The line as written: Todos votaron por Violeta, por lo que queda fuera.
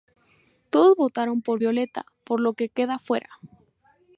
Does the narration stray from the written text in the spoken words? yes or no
no